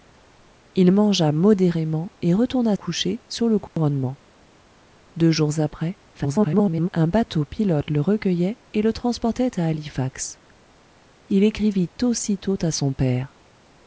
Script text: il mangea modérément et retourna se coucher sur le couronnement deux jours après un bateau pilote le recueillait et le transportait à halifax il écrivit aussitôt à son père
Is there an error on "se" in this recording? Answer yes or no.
yes